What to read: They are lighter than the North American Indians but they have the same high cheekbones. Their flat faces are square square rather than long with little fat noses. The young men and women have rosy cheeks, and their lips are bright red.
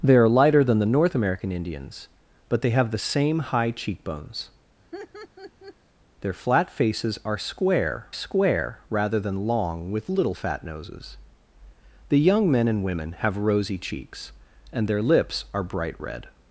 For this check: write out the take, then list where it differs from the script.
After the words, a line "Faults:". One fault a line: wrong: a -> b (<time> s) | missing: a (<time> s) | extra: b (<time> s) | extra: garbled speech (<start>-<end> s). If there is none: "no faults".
They are lighter than the North American Indians but they have the same high cheekbones. Their flat faces are square square rather than long with little fat noses. The young men and women have rosy cheeks, and their lips are bright red.
Faults:
no faults